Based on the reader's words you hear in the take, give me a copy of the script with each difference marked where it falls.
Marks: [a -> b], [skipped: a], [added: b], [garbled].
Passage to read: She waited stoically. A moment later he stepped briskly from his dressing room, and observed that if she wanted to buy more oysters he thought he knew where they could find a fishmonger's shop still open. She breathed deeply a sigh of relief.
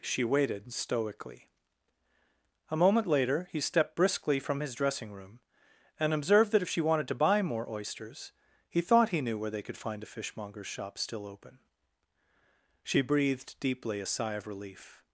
She waited stoically. A moment later he stepped briskly from his dressing room, and observed that if she wanted to buy more oysters he thought he knew where they could find a fishmonger's shop still open. She breathed deeply a sigh of relief.